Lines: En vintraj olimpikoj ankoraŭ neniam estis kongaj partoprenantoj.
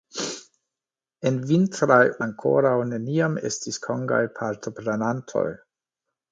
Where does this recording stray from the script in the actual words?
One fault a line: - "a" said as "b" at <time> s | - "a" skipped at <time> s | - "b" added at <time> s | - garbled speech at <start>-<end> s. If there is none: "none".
- "olimpikoj" skipped at 2.0 s